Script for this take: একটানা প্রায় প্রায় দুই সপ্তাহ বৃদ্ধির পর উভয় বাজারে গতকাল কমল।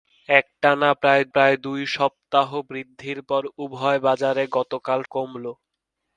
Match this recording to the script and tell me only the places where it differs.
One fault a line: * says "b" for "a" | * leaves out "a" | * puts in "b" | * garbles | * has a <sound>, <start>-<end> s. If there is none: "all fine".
all fine